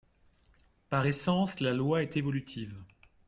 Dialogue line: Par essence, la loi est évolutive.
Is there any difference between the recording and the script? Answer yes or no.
no